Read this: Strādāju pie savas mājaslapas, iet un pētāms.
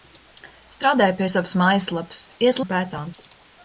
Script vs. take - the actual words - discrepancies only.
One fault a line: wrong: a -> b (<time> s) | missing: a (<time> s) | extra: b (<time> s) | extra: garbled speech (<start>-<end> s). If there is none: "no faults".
no faults